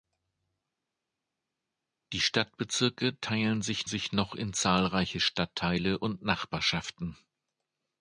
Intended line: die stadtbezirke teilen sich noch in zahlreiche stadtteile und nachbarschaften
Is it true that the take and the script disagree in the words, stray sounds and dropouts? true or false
true